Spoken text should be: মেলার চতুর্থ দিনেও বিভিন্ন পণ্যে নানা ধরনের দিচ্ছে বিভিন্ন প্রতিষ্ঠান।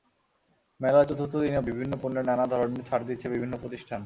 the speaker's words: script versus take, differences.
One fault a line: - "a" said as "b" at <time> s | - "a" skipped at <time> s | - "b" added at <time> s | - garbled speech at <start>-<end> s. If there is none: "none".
- "ছাড়" added at 2.9 s